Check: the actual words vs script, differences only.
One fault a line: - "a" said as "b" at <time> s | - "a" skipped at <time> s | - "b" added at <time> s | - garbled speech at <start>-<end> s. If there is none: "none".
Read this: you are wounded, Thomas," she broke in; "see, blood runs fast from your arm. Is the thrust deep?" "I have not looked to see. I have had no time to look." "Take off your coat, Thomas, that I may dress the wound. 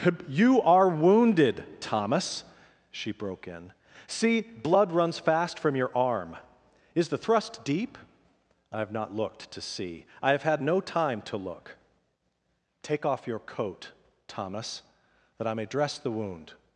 none